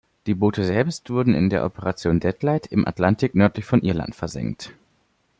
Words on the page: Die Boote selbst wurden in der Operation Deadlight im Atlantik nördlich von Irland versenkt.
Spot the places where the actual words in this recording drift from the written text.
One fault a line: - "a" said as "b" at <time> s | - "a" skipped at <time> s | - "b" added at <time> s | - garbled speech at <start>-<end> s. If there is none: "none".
none